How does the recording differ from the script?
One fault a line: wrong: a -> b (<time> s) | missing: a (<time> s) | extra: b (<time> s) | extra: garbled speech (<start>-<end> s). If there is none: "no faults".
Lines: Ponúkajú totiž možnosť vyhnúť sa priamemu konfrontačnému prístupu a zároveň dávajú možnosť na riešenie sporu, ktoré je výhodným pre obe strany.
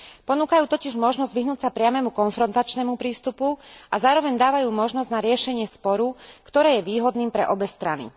no faults